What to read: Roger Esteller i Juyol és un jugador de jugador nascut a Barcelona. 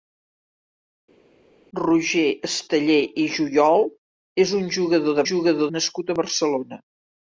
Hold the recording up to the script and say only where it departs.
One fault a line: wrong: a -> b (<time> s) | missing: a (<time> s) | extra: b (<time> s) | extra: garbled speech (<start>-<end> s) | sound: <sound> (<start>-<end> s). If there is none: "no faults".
no faults